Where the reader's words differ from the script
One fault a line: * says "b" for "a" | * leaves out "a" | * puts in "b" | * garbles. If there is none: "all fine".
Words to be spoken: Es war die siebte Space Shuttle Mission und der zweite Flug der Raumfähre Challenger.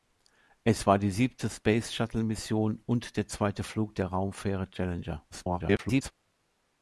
* garbles